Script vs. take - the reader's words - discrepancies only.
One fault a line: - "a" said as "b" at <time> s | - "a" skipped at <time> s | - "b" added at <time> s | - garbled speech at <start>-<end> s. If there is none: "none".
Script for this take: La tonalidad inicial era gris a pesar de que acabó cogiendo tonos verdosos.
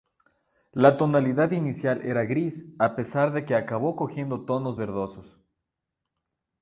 none